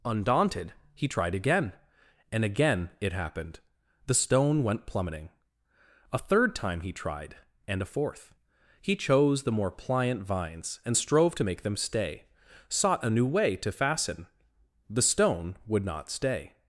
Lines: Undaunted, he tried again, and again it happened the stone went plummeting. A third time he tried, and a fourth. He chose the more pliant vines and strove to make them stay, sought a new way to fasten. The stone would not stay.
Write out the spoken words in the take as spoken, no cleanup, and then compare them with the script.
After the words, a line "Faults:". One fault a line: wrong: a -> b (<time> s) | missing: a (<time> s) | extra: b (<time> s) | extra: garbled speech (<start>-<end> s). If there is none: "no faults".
Undaunted, he tried again, and again it happened the stone went plummeting. A third time he tried, and a fourth. He chose the more pliant vines and strove to make them stay, sought a new way to fasten. The stone would not stay.
Faults:
no faults